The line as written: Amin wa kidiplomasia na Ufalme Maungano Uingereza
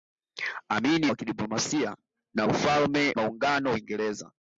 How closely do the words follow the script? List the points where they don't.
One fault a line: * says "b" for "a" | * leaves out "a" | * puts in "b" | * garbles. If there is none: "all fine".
all fine